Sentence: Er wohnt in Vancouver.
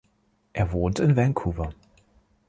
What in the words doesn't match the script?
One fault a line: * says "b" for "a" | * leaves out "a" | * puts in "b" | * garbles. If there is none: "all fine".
all fine